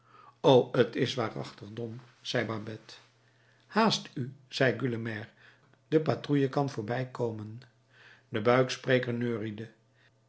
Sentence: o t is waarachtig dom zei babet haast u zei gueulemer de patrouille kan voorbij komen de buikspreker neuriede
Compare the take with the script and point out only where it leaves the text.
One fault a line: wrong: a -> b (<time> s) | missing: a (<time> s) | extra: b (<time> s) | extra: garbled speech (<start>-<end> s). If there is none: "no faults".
no faults